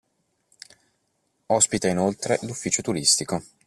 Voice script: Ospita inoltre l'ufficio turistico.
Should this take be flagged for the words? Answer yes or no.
no